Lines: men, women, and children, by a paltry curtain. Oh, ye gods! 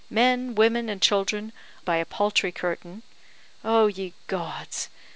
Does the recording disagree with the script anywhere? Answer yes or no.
no